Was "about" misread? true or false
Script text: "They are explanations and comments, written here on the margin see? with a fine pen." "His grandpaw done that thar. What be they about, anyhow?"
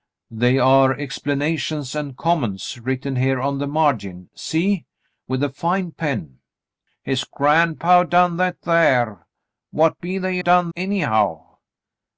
true